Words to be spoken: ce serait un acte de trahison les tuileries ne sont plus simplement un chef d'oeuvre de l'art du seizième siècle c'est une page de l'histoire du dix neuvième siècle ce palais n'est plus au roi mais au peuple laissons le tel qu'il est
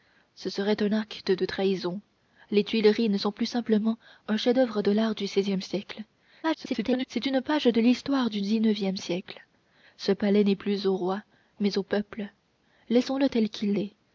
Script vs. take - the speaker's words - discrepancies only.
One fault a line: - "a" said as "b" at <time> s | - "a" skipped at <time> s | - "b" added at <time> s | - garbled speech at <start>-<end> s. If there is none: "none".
- garbled speech at 6.4-7.1 s